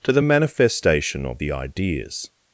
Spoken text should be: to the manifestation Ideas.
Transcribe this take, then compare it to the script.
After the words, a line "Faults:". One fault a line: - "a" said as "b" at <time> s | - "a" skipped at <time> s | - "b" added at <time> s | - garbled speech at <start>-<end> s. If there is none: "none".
to the manifestation of the Ideas.
Faults:
- "of the" added at 1.3 s